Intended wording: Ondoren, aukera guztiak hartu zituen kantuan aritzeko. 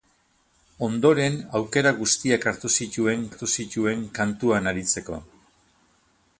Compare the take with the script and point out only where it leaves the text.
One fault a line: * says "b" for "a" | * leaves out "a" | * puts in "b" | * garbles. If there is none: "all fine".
* puts in "hartu zituen"